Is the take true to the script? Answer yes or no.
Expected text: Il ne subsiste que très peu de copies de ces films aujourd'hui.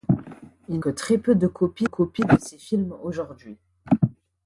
no